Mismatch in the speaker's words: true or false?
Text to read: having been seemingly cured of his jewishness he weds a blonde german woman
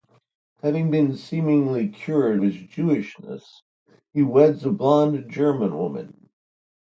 true